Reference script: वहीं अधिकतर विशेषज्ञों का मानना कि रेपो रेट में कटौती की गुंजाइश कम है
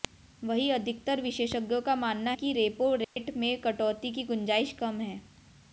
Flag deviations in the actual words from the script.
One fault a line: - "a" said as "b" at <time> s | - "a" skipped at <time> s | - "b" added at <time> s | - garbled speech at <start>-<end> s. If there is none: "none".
none